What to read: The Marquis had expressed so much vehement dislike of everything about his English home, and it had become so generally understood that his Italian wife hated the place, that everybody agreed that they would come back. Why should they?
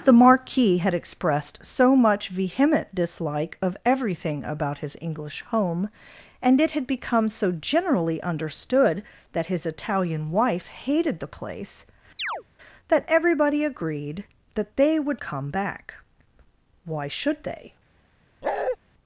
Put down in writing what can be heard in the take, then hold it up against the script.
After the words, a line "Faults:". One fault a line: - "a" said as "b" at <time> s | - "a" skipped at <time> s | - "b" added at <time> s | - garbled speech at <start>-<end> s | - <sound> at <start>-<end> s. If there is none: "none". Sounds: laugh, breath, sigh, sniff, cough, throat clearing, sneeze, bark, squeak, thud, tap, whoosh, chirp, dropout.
The Marquis had expressed so much vehement dislike of everything about his English home, and it had become so generally understood that his Italian wife hated the place, that everybody agreed that they would come back. Why should they?
Faults:
- chirp at 12.2-12.4 s
- bark at 18.4-18.8 s